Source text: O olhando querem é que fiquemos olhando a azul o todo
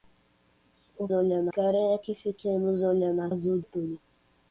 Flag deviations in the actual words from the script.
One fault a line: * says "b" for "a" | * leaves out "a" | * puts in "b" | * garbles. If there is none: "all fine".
all fine